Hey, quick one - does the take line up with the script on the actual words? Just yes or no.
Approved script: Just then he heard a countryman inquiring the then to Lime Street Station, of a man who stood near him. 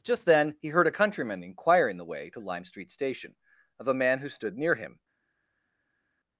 no